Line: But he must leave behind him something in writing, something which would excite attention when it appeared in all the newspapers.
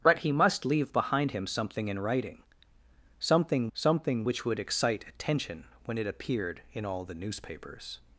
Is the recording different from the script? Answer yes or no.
yes